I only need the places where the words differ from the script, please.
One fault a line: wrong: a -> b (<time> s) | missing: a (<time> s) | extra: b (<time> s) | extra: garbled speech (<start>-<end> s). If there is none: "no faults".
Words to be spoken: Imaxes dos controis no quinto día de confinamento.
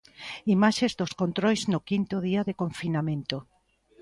no faults